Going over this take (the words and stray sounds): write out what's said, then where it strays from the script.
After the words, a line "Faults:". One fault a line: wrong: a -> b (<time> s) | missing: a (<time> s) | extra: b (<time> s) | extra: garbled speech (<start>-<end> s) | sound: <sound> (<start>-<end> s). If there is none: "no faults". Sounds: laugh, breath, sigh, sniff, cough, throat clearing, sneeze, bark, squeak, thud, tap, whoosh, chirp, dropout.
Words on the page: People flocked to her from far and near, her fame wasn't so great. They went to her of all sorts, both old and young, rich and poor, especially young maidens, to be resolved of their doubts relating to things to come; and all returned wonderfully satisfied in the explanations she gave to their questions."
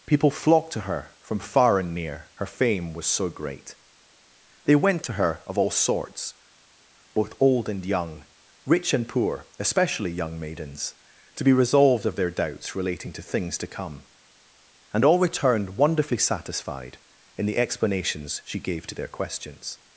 People flocked to her from far and near, her fame was so great. They went to her of all sorts, both old and young, rich and poor, especially young maidens, to be resolved of their doubts relating to things to come; and all returned wonderfully satisfied in the explanations she gave to their questions."
Faults:
wrong: wasn't -> was (2.9 s)